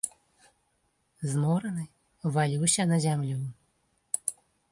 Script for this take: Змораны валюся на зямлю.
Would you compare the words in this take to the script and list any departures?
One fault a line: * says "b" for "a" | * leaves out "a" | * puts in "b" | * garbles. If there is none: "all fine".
all fine